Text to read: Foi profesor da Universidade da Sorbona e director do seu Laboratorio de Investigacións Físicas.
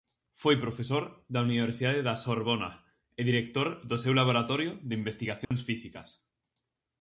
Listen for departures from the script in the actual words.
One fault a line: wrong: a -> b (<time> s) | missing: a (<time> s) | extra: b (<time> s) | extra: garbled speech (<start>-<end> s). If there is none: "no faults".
no faults